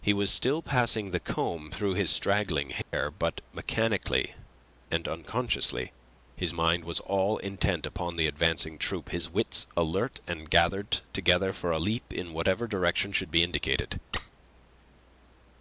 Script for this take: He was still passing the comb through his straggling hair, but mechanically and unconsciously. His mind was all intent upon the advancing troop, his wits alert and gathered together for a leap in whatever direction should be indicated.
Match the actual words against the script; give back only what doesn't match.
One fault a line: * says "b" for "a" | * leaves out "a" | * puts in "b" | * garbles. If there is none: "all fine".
all fine